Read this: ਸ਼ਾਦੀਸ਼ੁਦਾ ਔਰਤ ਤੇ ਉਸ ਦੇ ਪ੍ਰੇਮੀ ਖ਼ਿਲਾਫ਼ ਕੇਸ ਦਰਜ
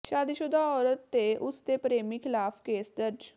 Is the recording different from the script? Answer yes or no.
no